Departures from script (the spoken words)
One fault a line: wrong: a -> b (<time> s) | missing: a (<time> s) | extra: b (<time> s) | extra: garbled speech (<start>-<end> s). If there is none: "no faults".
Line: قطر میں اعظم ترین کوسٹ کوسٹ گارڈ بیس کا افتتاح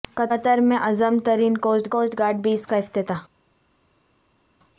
no faults